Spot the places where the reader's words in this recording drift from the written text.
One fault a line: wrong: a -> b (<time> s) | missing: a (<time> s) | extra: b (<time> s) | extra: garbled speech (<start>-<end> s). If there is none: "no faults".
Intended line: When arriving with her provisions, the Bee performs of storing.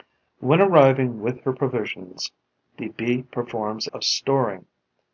no faults